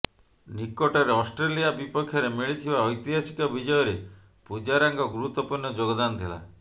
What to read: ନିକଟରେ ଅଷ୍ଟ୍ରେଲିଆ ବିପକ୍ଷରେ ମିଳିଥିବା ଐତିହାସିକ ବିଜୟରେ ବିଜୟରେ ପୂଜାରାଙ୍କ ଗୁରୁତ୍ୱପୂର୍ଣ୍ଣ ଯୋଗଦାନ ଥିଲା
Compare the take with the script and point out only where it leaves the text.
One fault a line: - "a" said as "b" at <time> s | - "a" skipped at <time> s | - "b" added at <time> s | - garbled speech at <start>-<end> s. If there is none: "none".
- "ବିଜୟରେ" skipped at 4.0 s